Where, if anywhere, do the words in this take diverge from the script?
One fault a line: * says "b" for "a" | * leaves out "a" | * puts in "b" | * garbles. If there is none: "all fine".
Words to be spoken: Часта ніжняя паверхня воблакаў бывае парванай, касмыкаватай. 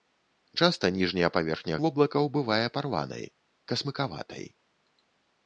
all fine